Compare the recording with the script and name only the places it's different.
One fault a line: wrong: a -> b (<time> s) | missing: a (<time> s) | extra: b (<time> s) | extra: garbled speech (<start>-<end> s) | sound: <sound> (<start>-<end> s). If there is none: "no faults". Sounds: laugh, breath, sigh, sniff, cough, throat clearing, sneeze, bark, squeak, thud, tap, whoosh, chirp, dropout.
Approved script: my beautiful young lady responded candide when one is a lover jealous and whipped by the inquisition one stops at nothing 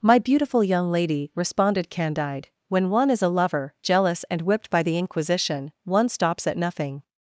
no faults